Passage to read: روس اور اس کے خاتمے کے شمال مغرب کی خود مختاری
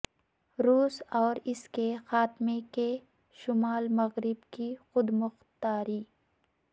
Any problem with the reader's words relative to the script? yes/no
no